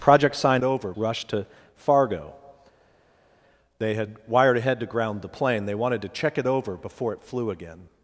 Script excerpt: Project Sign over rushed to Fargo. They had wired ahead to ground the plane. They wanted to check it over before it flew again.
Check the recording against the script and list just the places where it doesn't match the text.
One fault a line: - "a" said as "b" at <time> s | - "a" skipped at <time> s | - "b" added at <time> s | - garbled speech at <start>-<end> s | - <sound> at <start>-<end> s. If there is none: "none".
none